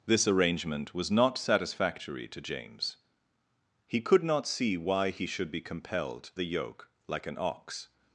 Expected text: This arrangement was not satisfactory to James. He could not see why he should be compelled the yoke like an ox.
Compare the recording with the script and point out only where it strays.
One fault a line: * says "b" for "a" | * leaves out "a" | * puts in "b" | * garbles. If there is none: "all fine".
all fine